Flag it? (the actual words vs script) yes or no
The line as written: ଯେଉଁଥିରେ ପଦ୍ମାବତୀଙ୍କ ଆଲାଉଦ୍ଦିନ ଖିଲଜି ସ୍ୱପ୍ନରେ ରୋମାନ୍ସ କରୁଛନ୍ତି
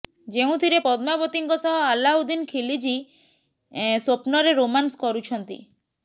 yes